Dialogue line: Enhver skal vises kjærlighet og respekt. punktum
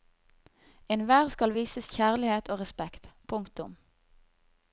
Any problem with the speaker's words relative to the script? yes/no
no